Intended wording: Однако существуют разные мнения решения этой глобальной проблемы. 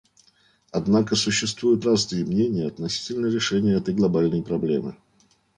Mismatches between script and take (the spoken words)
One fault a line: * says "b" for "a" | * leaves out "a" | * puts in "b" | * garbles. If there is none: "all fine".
* puts in "относительно"